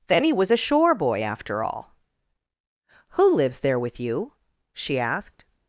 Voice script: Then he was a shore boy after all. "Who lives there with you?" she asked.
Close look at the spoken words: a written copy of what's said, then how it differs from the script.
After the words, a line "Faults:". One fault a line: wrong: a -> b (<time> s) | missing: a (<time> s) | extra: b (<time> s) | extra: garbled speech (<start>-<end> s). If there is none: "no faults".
Then he was a shore boy after all. "Who lives there with you?" she asked.
Faults:
no faults